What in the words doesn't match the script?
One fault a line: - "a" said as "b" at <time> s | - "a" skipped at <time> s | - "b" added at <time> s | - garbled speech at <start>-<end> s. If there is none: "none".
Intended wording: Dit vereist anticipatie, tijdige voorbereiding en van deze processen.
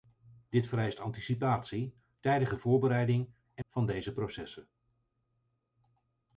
none